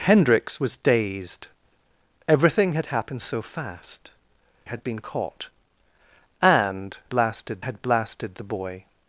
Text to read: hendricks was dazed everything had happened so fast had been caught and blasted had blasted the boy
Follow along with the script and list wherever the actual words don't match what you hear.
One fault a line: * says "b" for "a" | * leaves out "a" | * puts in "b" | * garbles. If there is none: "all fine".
all fine